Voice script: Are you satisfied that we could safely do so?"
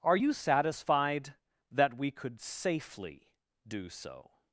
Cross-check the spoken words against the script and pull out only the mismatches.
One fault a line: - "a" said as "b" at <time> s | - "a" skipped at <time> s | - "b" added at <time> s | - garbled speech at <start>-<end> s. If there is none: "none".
none